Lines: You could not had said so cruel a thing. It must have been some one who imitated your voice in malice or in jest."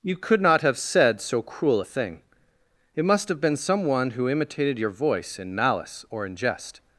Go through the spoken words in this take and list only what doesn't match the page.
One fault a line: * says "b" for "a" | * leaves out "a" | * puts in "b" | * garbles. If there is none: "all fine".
* says "have" for "had"